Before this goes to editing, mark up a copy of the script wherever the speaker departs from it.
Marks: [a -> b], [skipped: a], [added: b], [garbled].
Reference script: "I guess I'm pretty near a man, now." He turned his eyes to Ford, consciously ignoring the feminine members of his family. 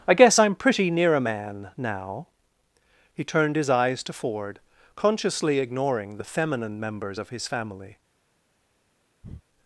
"I guess I'm pretty near a man, now." He turned his eyes to Ford, consciously ignoring the feminine members of his family.